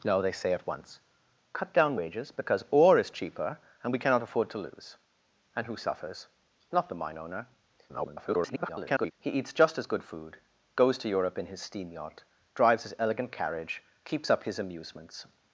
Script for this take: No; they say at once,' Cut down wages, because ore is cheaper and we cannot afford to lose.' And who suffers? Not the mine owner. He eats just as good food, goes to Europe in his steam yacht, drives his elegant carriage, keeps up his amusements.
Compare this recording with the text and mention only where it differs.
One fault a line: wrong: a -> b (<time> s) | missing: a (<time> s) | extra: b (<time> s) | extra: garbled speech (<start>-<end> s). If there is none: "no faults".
extra: garbled speech (7.9-9.1 s)